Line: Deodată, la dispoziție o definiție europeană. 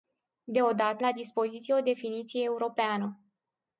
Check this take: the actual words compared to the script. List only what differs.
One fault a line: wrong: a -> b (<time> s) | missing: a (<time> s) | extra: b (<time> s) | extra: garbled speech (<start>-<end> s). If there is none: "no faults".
no faults